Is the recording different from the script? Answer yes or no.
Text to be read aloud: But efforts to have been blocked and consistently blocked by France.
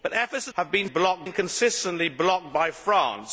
no